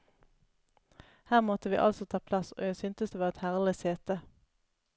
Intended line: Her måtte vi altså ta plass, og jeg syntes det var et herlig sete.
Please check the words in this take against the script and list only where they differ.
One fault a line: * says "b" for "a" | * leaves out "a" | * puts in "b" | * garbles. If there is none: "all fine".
all fine